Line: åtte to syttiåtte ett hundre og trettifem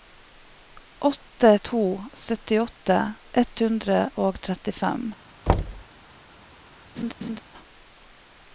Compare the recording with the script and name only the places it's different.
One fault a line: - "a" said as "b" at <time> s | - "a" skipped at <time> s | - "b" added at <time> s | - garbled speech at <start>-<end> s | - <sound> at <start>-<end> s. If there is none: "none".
- thud at 5.5-5.8 s
- laugh at 7.0-7.4 s